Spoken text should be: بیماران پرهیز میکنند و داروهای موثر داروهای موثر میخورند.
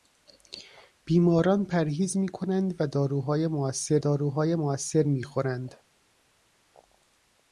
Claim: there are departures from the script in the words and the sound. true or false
false